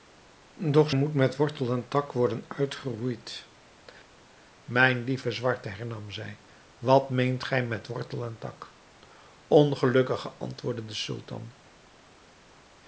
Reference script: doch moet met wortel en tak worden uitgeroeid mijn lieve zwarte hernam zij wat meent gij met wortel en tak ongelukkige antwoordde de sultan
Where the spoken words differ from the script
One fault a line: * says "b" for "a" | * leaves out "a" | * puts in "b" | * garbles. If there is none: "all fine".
all fine